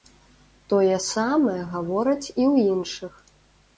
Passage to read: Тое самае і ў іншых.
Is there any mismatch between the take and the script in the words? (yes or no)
yes